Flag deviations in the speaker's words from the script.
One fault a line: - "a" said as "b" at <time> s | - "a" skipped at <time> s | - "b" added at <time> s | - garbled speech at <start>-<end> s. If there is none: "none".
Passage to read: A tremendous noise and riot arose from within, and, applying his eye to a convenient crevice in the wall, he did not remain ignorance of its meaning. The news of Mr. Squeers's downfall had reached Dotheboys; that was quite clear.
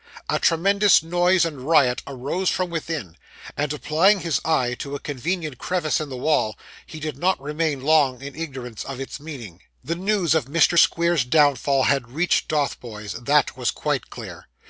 - "long in" added at 7.8 s